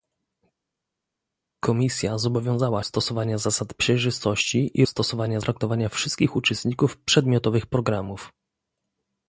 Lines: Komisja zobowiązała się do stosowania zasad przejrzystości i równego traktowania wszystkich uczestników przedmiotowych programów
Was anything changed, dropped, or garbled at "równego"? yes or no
yes